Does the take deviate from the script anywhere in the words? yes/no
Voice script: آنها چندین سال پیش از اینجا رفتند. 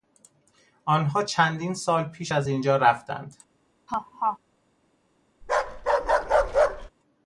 no